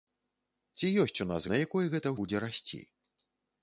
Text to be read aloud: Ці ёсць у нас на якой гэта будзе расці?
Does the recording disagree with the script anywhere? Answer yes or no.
no